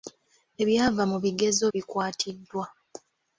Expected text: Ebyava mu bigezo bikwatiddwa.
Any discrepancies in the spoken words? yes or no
no